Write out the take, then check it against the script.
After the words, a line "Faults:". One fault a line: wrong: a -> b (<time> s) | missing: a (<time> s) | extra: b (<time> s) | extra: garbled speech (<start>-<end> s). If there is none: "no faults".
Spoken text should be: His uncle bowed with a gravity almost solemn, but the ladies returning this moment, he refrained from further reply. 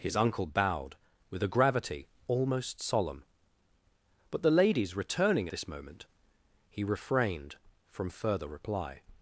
His uncle bowed with a gravity almost solemn, but the ladies returning this moment, he refrained from further reply.
Faults:
no faults